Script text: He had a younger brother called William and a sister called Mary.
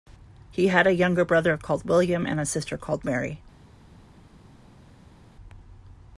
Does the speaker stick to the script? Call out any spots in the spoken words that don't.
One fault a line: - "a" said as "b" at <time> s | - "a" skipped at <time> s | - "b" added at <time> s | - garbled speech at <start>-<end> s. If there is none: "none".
none